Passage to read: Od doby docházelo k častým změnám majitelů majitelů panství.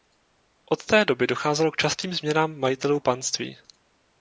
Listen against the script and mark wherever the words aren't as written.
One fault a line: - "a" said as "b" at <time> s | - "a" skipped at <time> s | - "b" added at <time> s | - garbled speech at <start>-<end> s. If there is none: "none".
- "té" added at 0.8 s
- "majitelů" skipped at 3.0 s